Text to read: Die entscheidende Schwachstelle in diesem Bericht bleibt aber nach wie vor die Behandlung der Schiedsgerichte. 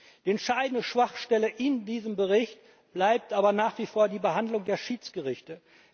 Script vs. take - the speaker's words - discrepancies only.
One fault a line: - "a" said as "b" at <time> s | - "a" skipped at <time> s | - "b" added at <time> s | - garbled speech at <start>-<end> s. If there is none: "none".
none